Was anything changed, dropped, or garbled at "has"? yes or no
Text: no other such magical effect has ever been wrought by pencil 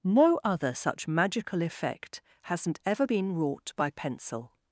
yes